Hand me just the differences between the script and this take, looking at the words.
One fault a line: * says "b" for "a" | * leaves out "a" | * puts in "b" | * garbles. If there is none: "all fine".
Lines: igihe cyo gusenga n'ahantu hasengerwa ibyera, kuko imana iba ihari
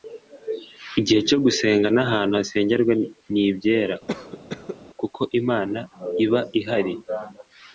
* puts in "ni"